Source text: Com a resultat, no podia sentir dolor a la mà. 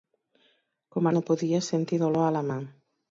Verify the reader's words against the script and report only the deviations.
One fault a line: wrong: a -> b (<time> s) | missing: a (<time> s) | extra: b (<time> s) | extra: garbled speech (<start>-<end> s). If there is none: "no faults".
missing: resultat (1.1 s)